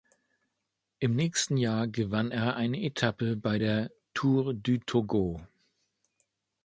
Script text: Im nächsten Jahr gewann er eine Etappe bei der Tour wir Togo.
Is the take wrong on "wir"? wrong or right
wrong